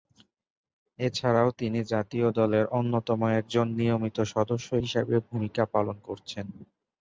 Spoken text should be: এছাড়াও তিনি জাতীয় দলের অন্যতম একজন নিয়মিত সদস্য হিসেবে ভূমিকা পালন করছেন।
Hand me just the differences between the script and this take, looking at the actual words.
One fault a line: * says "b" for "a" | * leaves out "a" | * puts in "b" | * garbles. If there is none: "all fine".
all fine